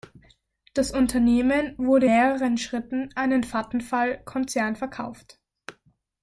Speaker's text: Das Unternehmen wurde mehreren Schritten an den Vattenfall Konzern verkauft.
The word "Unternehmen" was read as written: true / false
true